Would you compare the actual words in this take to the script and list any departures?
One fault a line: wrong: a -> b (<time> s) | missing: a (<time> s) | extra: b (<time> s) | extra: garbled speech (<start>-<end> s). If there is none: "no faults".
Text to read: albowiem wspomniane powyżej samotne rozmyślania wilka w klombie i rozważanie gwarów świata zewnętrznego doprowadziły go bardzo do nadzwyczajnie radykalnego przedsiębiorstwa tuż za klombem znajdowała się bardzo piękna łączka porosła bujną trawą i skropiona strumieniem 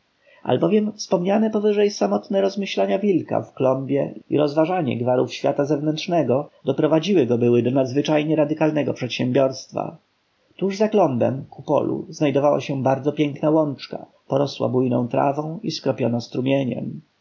wrong: bardzo -> były (7.4 s)
extra: ku polu (11.5 s)